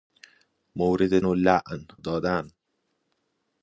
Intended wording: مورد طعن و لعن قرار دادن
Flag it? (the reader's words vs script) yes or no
yes